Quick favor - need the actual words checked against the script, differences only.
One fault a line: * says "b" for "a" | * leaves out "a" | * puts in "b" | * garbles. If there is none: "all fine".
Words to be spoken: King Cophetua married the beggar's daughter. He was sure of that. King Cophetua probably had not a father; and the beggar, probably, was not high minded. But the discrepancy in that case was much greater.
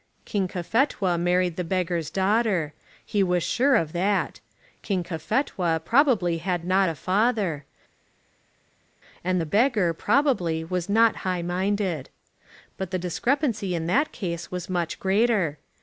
all fine